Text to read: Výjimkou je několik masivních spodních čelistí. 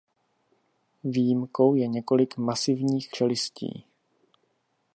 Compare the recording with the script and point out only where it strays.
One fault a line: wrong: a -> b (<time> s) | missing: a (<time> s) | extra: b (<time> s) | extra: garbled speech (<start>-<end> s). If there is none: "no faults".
missing: spodních (3.1 s)